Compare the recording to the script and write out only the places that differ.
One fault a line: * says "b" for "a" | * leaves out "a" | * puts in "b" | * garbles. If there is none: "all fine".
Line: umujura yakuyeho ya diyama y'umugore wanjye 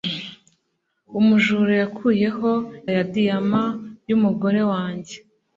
all fine